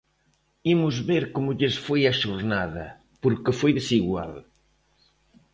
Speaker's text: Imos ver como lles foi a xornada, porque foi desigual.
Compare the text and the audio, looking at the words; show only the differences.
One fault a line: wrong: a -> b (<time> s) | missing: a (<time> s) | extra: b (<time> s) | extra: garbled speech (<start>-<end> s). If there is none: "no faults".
no faults